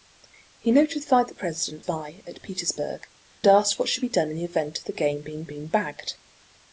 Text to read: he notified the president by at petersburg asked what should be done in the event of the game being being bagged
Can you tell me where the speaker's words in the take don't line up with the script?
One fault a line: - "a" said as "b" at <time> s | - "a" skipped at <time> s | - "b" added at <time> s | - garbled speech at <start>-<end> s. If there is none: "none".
none